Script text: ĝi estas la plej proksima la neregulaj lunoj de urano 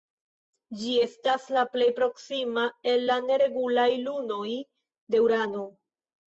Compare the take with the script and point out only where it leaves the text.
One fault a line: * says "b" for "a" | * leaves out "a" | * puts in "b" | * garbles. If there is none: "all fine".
* puts in "el"